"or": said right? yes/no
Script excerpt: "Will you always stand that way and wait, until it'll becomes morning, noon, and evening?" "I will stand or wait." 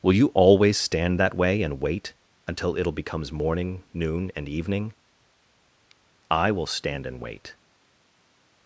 no